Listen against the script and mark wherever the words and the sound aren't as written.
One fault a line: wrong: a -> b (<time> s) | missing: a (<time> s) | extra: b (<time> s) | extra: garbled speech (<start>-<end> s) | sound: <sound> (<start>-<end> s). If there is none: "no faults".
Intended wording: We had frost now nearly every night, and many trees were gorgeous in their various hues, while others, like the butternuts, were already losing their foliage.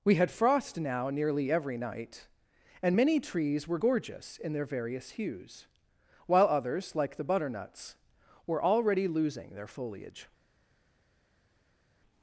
no faults